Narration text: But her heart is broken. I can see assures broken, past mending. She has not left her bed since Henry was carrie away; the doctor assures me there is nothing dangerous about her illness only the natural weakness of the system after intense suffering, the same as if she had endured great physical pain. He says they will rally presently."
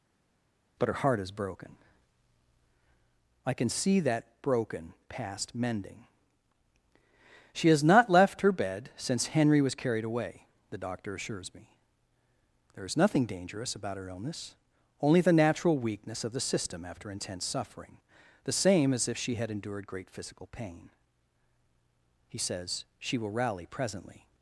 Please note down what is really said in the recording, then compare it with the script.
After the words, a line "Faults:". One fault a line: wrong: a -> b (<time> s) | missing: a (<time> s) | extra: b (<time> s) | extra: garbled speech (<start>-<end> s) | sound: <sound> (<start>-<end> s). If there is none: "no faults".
But her heart is broken. I can see that broken, past mending. She has not left her bed since Henry was carried away; the doctor assures me there is nothing dangerous about her illness only the natural weakness of the system after intense suffering, the same as if she had endured great physical pain. He says she will rally presently."
Faults:
wrong: assures -> that (4.0 s)
wrong: carrie -> carried (9.7 s)
wrong: they -> she (23.0 s)